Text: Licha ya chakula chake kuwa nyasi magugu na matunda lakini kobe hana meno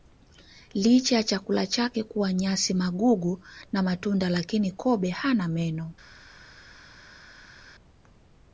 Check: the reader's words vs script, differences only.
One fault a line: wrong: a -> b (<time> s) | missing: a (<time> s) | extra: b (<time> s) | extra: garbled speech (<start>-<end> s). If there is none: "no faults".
no faults